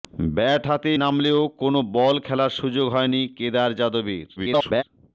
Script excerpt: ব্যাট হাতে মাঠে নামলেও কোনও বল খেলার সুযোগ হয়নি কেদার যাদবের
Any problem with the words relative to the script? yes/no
yes